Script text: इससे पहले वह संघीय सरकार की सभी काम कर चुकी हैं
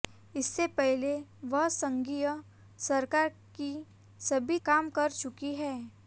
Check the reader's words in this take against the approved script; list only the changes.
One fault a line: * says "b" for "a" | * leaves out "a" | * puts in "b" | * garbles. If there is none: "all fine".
all fine